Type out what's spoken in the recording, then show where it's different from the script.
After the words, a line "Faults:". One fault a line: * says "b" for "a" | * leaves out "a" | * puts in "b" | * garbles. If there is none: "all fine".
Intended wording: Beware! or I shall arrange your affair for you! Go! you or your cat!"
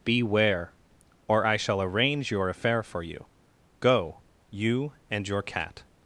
Beware! or I shall arrange your affair for you! Go! you and your cat!"
Faults:
* says "and" for "or"